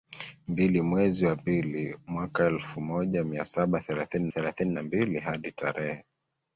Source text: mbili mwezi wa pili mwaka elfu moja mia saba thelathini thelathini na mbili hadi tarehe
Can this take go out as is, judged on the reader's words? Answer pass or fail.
pass